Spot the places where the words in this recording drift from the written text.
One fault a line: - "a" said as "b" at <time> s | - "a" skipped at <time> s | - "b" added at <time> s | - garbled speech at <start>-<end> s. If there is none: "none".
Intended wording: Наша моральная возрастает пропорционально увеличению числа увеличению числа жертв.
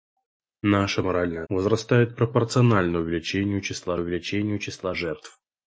none